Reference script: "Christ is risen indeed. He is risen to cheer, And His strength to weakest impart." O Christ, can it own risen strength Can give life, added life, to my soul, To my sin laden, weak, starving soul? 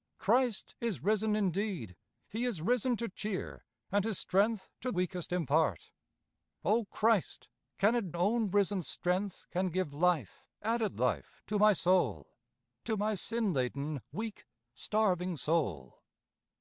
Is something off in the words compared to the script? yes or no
no